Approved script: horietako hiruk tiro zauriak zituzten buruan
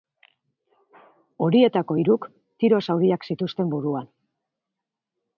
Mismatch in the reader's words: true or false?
false